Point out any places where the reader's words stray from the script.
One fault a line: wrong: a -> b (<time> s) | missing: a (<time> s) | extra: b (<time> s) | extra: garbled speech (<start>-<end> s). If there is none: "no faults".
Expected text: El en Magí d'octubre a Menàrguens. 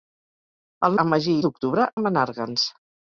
no faults